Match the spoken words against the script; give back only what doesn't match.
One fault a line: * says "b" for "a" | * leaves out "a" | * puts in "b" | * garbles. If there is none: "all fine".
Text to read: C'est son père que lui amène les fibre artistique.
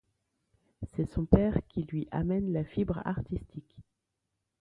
* says "qui" for "que"
* says "la" for "les"